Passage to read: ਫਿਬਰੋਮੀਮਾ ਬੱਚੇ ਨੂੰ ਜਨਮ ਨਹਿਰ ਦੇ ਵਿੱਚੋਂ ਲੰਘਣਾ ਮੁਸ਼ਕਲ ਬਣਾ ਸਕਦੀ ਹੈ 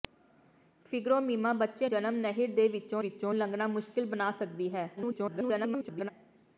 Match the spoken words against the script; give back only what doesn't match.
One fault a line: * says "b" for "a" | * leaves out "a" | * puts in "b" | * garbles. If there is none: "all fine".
* leaves out "ਨੂੰ"
* puts in "ਵਿੱਚੋਂ"
* garbles